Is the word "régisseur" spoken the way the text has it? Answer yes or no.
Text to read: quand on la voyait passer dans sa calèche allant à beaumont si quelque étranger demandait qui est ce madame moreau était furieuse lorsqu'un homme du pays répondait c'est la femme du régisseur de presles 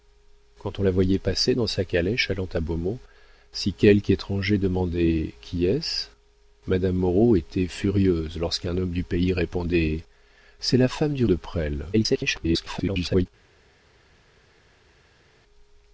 no